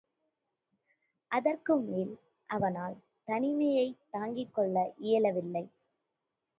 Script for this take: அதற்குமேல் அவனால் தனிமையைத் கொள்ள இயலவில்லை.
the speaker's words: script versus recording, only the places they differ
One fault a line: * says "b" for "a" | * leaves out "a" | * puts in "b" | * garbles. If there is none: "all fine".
* puts in "தாங்கிக்"